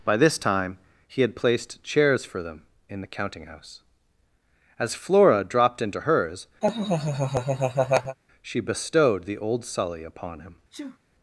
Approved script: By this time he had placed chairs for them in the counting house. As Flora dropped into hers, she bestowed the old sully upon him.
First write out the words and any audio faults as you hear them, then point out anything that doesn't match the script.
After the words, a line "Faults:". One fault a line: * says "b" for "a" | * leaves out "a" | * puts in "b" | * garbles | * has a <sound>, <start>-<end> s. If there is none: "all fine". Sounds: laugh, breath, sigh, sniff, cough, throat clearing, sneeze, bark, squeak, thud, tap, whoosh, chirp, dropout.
By this time he had placed chairs for them in the counting house. As Flora dropped into hers, she bestowed the old sully upon him.
Faults:
* has a laugh, 6.6-8.2 s
* has a sneeze, 10.7-11.0 s